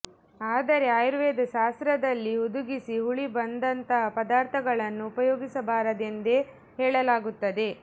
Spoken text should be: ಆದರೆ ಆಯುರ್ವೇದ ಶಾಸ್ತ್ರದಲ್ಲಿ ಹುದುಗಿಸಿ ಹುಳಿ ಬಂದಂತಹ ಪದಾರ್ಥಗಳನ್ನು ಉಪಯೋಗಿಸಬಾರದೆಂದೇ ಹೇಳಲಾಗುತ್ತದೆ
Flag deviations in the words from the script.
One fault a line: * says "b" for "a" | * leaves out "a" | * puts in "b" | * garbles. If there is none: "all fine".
all fine